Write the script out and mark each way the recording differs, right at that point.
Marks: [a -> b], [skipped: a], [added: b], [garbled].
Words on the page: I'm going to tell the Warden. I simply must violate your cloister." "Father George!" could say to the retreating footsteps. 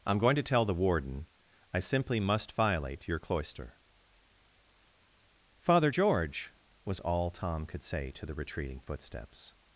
I'm going to tell the Warden. I simply must violate your cloister." "Father George!" [added: was all Tom] could say to the retreating footsteps.